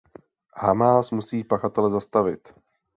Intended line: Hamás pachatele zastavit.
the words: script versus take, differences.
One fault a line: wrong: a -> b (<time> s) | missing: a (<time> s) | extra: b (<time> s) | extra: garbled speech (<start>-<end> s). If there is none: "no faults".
extra: musí (1.1 s)